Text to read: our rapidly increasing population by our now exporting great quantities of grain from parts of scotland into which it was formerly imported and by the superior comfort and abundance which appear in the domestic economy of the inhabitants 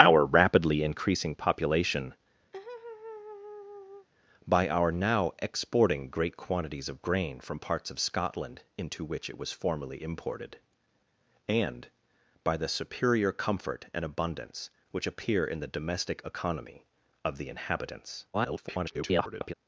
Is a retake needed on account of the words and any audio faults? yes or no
yes